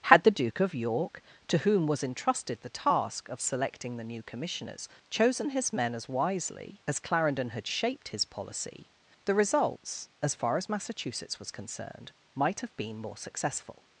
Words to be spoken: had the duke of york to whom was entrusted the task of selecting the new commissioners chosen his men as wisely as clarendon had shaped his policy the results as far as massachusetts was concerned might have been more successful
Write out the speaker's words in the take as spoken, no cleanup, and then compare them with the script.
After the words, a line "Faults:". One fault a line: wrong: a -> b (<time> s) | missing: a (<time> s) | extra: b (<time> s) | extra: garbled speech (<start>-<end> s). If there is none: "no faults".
had the duke of york to whom was entrusted the task of selecting the new commissioners chosen his men as wisely as clarendon had shaped his policy the results as far as massachusetts was concerned might have been more successful
Faults:
no faults